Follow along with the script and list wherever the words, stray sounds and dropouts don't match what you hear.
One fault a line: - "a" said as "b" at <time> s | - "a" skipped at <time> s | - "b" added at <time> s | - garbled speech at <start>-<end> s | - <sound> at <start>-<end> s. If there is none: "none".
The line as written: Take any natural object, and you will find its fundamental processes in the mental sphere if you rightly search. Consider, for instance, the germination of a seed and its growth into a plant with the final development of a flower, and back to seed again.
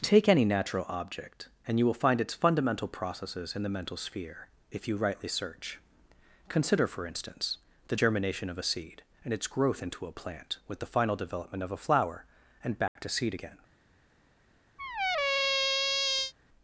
- dropout at 12.9-13.0 s
- squeak at 14.8-16.3 s